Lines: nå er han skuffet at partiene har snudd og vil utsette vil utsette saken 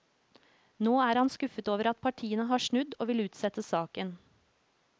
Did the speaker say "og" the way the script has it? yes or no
yes